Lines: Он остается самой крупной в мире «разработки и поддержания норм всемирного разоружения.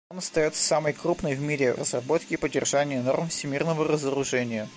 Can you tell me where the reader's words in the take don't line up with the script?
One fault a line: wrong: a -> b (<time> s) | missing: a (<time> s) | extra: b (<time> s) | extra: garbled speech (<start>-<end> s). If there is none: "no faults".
no faults